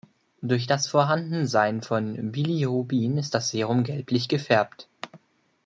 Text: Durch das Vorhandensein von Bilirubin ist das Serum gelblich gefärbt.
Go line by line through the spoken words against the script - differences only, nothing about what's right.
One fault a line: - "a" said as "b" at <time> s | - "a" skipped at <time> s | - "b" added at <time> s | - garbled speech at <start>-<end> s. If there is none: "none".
none